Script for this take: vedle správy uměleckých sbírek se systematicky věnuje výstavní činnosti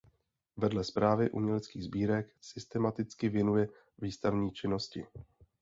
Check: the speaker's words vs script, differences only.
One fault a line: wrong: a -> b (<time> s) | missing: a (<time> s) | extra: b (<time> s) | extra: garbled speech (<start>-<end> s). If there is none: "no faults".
missing: se (2.4 s)